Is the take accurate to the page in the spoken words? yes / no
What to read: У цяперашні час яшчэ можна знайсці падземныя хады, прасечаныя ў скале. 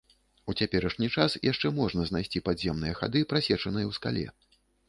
yes